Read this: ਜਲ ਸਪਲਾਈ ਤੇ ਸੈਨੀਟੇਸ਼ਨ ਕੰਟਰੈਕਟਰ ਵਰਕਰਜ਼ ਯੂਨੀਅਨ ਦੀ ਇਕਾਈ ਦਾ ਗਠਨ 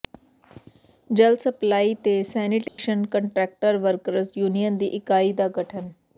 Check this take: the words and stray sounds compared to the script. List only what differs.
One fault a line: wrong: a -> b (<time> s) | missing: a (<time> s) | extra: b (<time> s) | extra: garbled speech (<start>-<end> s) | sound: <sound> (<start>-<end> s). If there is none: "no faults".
sound: dropout (2.7-2.8 s)